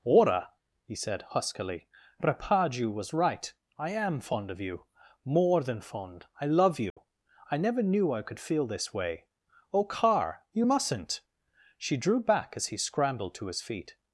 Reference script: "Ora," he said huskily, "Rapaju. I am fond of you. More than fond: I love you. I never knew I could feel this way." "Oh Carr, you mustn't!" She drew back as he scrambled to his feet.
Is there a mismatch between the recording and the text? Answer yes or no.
yes